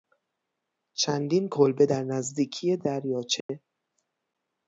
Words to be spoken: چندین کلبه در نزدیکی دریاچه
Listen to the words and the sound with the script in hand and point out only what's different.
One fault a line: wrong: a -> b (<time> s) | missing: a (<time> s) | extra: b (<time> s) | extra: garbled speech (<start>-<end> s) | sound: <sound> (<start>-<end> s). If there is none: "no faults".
sound: dropout (3.4-3.5 s)